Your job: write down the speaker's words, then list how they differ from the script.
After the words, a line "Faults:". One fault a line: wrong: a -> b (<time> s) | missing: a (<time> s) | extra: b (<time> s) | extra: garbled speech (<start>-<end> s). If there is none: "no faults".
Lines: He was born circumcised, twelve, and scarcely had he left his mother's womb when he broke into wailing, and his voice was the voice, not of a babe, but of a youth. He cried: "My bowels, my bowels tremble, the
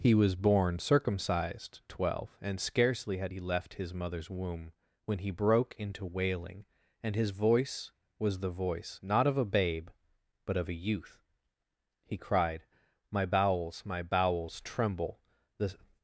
He was born circumcised, twelve, and scarcely had he left his mother's womb when he broke into wailing, and his voice was the voice, not of a babe, but of a youth. He cried: "My bowels, my bowels tremble, the
Faults:
no faults